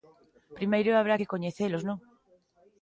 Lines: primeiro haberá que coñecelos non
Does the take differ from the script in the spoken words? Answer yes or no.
no